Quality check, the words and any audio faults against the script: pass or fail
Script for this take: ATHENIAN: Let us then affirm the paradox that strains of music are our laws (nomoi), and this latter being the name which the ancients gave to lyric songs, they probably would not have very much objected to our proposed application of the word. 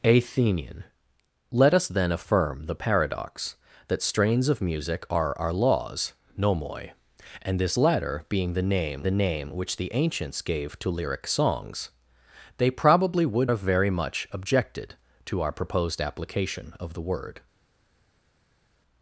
fail